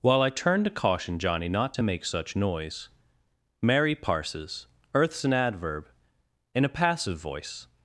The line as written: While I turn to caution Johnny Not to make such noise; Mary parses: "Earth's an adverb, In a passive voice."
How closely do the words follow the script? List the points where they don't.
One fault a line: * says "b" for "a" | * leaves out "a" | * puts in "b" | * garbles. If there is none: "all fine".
all fine